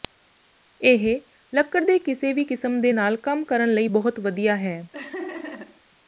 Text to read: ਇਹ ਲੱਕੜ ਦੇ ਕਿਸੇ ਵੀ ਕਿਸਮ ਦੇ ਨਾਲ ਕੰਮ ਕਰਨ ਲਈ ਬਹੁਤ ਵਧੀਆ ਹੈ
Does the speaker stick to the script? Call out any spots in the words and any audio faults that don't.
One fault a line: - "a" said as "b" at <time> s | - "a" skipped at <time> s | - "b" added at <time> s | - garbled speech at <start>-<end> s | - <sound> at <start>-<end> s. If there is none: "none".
- laugh at 4.9-5.8 s